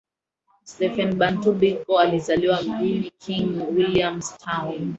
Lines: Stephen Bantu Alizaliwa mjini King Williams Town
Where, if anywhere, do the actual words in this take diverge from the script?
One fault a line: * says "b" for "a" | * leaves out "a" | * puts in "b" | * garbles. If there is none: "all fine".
* puts in "Biko"